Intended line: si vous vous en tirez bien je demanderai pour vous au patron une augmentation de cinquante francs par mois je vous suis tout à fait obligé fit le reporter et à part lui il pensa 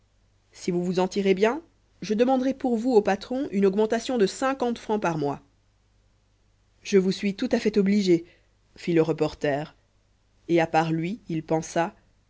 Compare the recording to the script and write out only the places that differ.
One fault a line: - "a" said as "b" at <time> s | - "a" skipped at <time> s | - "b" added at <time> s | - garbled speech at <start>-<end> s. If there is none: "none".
none